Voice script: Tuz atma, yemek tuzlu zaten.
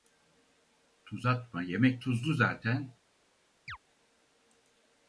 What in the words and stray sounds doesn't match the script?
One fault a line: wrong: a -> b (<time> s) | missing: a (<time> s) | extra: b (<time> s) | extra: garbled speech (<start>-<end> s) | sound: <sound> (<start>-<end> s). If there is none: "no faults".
sound: chirp (3.7-3.8 s)